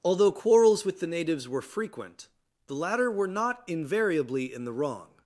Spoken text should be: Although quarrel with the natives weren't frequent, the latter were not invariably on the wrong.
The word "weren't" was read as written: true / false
false